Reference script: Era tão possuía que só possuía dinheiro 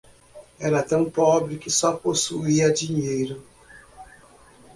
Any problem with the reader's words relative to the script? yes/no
yes